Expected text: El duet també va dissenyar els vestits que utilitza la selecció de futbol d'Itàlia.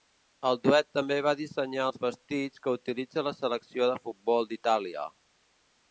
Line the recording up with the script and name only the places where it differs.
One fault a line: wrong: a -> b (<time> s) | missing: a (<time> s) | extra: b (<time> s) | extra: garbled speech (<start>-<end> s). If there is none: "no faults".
no faults